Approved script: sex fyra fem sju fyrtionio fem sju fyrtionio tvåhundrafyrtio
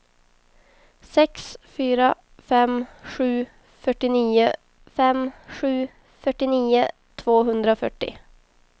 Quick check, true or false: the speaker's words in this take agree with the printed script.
true